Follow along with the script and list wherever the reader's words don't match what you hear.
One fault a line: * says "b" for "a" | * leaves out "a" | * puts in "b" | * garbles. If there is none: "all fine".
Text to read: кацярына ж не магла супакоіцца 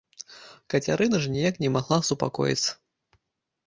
* puts in "ніяк"